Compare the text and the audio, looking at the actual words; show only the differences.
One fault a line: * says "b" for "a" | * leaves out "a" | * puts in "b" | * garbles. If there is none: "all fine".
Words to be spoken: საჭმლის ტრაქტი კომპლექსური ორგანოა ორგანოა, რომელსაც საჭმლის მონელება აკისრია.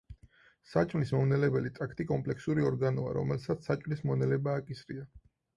* puts in "მომნელებელი"
* leaves out "ორგანოა"